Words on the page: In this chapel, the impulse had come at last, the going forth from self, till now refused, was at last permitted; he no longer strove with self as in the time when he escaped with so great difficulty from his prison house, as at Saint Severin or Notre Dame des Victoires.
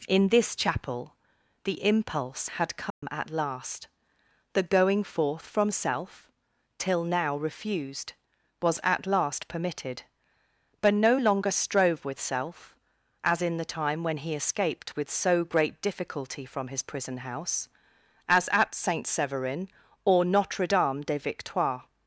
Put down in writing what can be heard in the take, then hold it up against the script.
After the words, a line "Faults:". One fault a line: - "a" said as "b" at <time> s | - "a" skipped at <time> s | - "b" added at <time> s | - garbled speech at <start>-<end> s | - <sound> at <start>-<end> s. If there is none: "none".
In this chapel, the impulse had come at last, the going forth from self, till now refused, was at last permitted; but no longer strove with self as in the time when he escaped with so great difficulty from his prison house, as at Saint Severin or Notre Dame des Victoires.
Faults:
- dropout at 2.9-3.0 s
- "he" said as "but" at 10.8 s